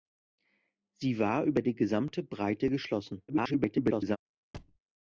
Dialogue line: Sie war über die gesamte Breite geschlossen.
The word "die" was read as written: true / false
true